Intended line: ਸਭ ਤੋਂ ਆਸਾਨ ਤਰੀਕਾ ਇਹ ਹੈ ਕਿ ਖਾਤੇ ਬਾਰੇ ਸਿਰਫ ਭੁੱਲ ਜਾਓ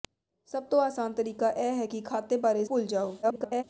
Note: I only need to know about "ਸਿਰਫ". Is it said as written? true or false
false